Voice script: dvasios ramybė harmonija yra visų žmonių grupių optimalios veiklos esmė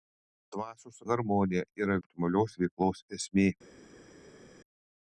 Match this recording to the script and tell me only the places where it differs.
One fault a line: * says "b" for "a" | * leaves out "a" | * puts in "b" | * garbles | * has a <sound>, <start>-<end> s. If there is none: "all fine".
* leaves out "ramybė"
* leaves out "visų žmonių grupių"